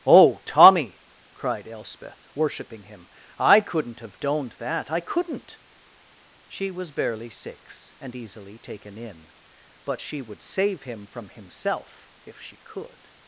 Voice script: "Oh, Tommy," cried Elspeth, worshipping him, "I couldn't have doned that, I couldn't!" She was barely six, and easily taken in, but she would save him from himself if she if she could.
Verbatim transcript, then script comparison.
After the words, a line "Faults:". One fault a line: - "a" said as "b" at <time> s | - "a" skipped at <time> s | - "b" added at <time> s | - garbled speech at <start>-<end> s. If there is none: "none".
"Oh, Tommy," cried Elspeth, worshipping him, "I couldn't have doned that, I couldn't!" She was barely six, and easily taken in, but she would save him from himself if she could.
Faults:
- "if she" skipped at 12.6 s